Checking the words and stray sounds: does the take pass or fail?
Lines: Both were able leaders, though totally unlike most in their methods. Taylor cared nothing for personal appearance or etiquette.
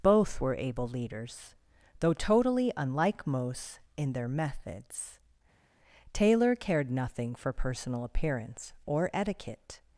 pass